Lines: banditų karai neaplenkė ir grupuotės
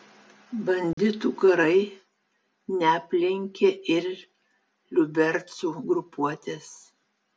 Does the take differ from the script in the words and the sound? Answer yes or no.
yes